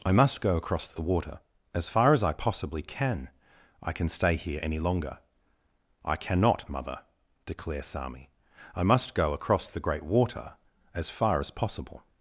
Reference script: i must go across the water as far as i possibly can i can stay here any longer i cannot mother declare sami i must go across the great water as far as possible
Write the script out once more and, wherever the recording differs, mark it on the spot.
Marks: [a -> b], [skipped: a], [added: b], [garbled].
i must go across the water as far as i possibly can i can stay here any longer i cannot mother declare sami i must go across the great water as far as possible